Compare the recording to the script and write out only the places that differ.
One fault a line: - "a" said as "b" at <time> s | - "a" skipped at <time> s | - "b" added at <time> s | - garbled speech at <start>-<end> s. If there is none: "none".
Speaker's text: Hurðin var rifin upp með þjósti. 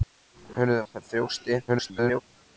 - "var rifin" skipped at 0.8 s
- garbled speech at 1.7-2.2 s